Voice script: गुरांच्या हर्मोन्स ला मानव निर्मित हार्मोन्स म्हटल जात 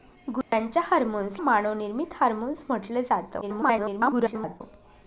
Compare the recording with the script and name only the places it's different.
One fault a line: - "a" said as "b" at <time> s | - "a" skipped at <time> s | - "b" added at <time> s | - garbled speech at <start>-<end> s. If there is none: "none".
- "ला" skipped at 1.4 s
- garbled speech at 3.4-4.6 s